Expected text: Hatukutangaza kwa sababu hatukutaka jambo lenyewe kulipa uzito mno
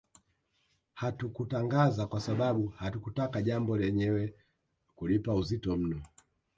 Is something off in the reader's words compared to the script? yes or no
no